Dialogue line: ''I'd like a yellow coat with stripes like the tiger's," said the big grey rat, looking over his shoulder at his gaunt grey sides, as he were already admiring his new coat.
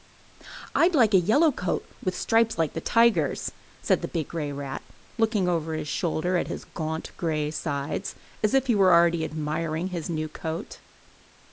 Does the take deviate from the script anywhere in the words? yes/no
yes